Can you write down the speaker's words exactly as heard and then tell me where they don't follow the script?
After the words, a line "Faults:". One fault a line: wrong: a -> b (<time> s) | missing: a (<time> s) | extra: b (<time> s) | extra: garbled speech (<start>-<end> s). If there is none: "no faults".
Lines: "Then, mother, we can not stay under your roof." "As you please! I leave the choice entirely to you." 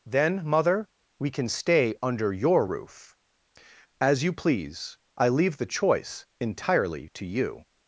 "Then, mother, we can stay under your roof." "As you please! I leave the choice entirely to you."
Faults:
missing: not (1.5 s)